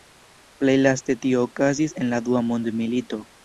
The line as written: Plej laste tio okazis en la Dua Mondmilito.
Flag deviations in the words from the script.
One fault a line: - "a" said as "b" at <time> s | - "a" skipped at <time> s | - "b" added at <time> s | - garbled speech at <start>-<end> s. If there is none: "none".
none